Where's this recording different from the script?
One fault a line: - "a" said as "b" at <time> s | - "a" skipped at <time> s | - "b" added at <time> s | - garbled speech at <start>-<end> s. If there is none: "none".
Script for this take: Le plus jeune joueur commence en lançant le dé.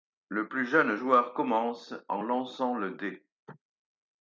none